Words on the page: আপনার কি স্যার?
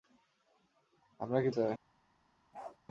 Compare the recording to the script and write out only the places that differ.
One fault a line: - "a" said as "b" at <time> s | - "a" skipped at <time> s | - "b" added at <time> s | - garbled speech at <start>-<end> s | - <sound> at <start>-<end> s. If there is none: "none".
- bark at 2.5-2.8 s